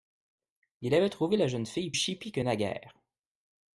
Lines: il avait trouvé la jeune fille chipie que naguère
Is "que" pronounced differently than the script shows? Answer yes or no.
no